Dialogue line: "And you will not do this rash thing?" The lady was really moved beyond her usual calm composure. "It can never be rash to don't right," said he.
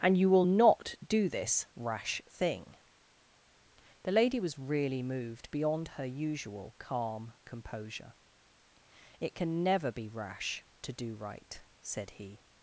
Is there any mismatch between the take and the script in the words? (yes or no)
yes